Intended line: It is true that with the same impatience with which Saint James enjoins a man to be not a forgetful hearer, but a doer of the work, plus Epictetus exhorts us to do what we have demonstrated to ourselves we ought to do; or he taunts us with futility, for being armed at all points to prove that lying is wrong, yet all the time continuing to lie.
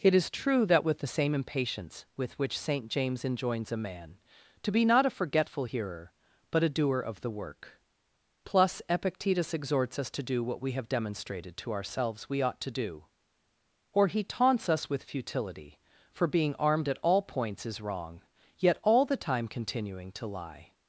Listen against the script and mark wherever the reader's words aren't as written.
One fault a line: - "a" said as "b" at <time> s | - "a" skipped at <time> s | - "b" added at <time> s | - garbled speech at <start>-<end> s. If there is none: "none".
- "to prove that lying" skipped at 17.7 s